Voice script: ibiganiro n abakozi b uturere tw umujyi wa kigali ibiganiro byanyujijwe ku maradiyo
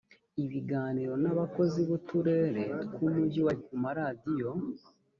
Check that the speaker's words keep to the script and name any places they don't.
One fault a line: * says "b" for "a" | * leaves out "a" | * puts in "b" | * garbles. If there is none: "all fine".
* leaves out "kigali ibiganiro byanyujijwe"